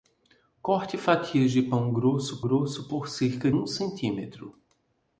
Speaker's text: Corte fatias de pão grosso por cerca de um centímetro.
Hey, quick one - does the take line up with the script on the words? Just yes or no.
no